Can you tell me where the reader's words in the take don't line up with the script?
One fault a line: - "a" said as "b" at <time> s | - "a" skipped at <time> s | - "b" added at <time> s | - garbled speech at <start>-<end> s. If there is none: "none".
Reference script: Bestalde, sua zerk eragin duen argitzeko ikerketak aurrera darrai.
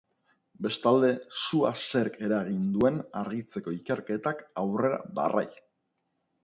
none